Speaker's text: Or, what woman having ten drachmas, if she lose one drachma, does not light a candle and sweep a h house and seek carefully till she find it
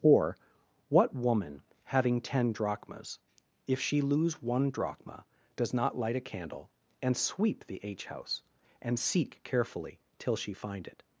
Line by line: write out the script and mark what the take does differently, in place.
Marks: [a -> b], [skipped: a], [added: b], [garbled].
Or, what woman having ten drachmas, if she lose one drachma, does not light a candle and sweep [a -> the] h house and seek carefully till she find it